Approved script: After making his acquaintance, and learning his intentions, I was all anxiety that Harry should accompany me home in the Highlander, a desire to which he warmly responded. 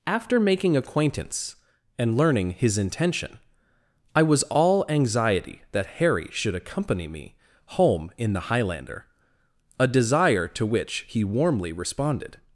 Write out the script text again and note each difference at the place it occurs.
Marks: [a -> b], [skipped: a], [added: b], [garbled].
After making [skipped: his] acquaintance, and learning his [intentions, -> intention] I was all anxiety that Harry should accompany me home in the Highlander, a desire to which he warmly responded.